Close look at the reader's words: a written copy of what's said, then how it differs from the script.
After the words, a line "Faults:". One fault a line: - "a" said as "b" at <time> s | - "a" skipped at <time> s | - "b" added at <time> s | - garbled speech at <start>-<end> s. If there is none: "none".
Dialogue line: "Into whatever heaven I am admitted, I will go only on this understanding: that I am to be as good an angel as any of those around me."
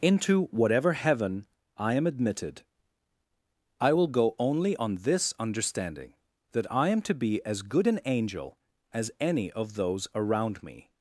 "Into whatever heaven I am admitted, I will go only on this understanding: that I am to be as good an angel as any of those around me."
Faults:
none